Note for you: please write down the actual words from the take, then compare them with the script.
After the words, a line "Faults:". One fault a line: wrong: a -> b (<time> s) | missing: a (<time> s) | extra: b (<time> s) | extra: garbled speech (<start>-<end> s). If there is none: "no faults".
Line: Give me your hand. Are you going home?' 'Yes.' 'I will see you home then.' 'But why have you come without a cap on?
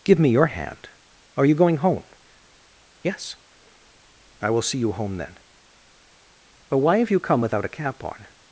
Give me your hand. Are you going home?' 'Yes.' 'I will see you home then.' 'But why have you come without a cap on?
Faults:
no faults